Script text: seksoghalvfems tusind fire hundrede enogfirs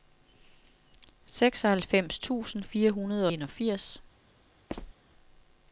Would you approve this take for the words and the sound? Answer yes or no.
no